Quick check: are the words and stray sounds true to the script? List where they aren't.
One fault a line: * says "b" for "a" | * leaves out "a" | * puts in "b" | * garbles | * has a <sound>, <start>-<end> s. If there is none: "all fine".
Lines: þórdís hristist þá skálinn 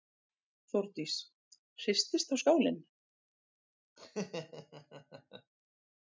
* has a laugh, 4.0-5.5 s